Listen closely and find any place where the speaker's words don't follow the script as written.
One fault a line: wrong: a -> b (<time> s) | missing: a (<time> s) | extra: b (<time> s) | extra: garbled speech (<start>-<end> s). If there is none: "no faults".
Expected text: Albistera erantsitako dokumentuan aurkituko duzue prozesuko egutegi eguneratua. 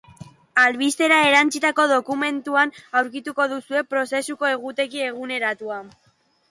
no faults